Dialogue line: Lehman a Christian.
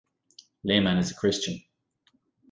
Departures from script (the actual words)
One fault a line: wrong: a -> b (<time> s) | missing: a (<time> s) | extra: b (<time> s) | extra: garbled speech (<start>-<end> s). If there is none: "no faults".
extra: is (1.0 s)